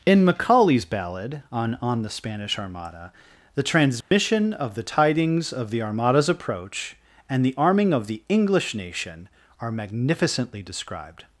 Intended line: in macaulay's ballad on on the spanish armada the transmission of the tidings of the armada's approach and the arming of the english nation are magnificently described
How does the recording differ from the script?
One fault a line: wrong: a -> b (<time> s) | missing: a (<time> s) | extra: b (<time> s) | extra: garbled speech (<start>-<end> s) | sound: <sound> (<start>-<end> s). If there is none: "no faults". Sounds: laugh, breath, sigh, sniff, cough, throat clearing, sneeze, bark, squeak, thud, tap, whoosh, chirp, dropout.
sound: dropout (4.0-4.1 s)